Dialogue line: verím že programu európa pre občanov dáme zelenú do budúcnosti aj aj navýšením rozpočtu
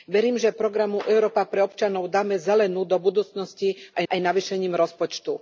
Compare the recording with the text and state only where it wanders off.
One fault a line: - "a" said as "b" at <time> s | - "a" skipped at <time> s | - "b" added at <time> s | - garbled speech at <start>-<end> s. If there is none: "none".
none